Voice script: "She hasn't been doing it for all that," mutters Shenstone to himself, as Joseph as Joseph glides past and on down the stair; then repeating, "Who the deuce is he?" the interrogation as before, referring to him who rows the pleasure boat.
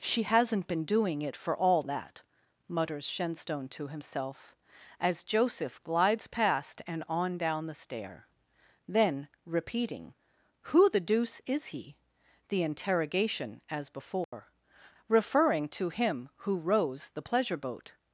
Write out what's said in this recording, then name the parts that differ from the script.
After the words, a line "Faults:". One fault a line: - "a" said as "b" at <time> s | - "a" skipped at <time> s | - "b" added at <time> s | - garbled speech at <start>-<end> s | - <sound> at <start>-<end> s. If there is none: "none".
"She hasn't been doing it for all that," mutters Shenstone to himself, as Joseph glides past and on down the stair; then repeating, "Who the deuce is he?" the interrogation as before, referring to him who rows the pleasure boat.
Faults:
- "as Joseph" skipped at 5.8 s
- dropout at 14.2-14.3 s